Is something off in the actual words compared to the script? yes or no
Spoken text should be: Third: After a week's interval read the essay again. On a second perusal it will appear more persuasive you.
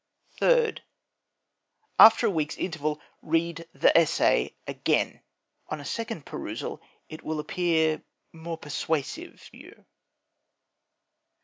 no